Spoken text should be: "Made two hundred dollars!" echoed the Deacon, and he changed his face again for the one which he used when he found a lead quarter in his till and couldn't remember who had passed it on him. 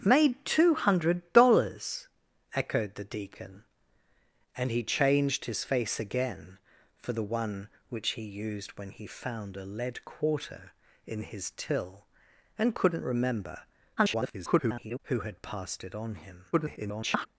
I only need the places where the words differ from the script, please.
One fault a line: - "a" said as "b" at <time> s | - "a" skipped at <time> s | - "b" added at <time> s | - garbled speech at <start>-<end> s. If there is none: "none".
- garbled speech at 14.0-15.0 s
- garbled speech at 16.5-17.3 s